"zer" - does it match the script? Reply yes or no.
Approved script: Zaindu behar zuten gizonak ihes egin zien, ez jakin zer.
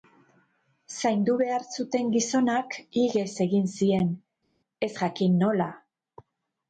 no